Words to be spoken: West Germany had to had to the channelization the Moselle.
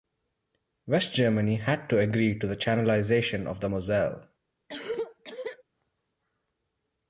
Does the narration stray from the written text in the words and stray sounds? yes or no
yes